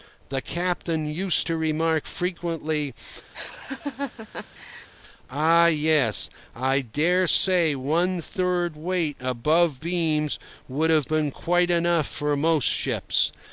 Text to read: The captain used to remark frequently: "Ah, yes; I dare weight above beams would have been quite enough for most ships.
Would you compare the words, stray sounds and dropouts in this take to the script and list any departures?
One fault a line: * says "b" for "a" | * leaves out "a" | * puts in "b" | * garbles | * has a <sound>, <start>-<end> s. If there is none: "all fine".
* has a laugh, 3.3-4.9 s
* puts in "say one third"